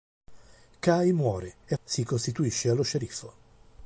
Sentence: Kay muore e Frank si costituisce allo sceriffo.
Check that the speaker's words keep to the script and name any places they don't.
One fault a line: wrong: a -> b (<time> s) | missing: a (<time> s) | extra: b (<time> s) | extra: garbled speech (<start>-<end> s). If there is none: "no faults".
missing: Frank (1.8 s)